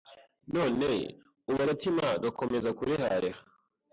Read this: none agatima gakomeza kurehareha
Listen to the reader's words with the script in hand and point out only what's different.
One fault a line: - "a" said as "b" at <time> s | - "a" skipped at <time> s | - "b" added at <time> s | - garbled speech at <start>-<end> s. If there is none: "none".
- "ubu" added at 1.5 s